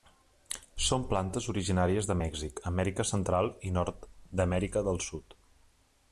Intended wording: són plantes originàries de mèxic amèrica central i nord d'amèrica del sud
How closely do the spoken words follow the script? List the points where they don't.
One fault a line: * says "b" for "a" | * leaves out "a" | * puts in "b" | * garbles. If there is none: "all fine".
all fine